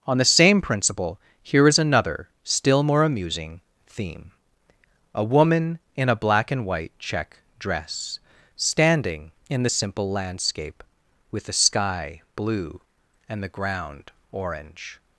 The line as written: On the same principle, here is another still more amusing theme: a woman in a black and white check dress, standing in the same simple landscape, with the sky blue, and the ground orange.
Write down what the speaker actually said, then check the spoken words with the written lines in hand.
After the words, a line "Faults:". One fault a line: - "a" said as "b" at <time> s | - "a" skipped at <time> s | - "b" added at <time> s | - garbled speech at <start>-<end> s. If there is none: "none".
On the same principle, here is another still more amusing theme: a woman in a black and white check dress, standing in the simple landscape, with the sky blue, and the ground orange.
Faults:
- "same" skipped at 9.7 s